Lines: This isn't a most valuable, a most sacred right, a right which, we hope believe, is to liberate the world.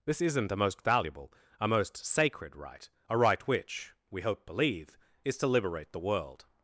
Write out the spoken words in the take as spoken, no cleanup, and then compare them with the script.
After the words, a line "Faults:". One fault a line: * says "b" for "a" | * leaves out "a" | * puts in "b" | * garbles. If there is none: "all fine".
This isn't a most valuable, a most sacred right, a right which, we hope believe, is to liberate the world.
Faults:
all fine